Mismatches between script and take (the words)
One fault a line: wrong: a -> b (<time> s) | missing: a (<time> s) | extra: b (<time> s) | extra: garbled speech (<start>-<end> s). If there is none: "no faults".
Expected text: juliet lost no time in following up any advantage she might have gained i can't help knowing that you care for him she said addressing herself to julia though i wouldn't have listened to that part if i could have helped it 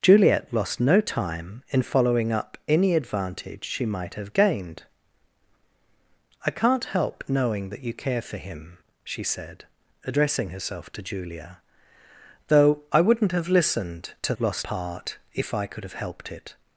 wrong: that -> lost (14.4 s)